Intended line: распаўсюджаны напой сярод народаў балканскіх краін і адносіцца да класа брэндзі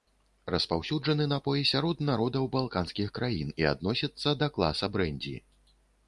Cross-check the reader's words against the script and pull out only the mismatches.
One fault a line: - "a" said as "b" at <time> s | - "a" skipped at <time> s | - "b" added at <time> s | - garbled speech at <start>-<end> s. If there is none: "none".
none